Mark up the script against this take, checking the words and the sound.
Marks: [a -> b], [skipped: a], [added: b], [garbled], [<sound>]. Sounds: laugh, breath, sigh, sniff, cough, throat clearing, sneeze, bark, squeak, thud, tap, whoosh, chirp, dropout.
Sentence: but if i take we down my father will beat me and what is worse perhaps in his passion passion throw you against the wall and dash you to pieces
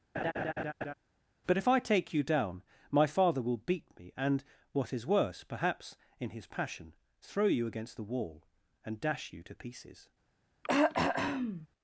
[laugh] but if i take [we -> you] down my father will beat me and what is worse perhaps in his passion [skipped: passion] throw you against the wall and dash you to pieces [throat clearing]